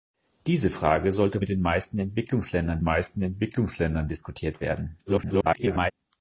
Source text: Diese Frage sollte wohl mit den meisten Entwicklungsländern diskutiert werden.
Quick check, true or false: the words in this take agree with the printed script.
false